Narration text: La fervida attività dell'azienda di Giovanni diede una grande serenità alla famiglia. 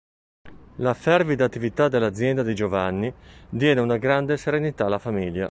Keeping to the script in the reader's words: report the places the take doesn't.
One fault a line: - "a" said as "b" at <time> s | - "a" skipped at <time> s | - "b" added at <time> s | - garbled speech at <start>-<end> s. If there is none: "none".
none